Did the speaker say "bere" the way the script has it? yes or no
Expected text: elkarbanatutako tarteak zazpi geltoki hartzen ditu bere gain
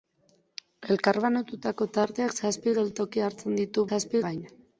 no